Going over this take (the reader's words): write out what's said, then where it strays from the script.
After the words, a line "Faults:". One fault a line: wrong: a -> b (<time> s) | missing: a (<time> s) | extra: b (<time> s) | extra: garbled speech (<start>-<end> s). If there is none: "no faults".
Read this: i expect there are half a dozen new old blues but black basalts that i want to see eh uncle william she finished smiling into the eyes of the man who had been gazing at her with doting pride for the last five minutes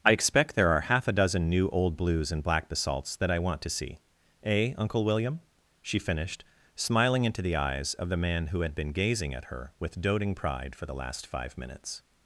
i expect there are half a dozen new old blues and black basalts that i want to see eh uncle william she finished smiling into the eyes of the man who had been gazing at her with doting pride for the last five minutes
Faults:
wrong: but -> and (2.3 s)